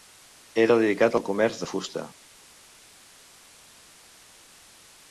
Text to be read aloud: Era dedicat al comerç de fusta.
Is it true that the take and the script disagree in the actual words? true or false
false